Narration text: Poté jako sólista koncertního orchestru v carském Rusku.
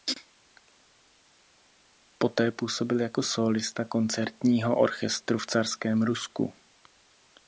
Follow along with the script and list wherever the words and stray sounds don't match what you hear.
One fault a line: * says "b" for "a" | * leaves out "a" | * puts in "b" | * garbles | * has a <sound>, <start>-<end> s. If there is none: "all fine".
* puts in "působil"